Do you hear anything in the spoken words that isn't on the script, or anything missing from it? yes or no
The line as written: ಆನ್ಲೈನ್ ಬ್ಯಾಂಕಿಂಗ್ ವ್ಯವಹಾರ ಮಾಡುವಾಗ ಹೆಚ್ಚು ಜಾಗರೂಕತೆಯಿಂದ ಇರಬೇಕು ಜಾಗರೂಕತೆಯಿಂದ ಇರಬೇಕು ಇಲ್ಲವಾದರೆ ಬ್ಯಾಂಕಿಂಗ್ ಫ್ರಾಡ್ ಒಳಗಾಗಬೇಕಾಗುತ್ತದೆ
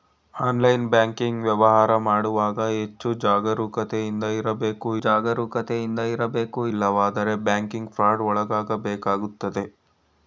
no